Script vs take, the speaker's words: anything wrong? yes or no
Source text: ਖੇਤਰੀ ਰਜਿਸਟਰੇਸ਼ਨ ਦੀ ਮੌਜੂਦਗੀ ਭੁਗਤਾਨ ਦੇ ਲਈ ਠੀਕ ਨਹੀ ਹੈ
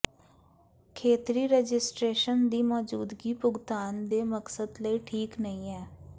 yes